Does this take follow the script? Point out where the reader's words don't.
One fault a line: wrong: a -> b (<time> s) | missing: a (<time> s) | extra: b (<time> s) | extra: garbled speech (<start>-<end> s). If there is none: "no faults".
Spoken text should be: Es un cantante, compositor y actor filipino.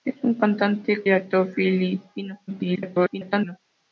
missing: compositor (1.1 s)
extra: garbled speech (2.5-3.6 s)